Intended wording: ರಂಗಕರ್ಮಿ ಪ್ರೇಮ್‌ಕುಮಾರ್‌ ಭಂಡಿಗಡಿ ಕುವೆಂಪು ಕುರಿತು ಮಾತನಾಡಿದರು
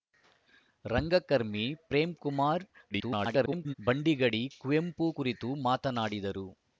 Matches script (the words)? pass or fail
fail